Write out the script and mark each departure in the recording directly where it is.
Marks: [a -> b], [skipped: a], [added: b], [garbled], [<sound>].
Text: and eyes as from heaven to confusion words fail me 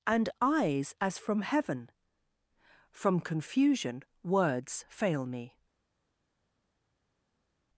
and eyes as from heaven [to -> from] confusion words fail me